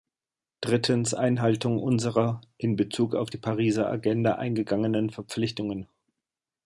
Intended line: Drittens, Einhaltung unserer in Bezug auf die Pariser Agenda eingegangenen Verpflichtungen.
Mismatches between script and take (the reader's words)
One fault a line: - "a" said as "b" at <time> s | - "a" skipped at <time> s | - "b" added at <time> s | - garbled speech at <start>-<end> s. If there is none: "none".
none